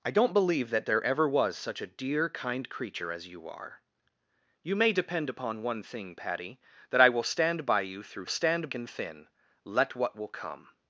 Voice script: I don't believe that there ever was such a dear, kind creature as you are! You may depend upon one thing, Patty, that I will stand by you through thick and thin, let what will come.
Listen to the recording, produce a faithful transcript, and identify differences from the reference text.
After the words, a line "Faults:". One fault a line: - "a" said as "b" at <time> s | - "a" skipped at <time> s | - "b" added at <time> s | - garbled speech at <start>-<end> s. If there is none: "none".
I don't believe that there ever was such a dear, kind creature as you are! You may depend upon one thing, Patty, that I will stand by you through stand and thin, let what will come.
Faults:
- "thick" said as "stand" at 8.3 s